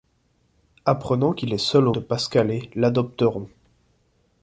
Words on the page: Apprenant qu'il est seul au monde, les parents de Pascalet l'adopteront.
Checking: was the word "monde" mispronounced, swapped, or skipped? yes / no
yes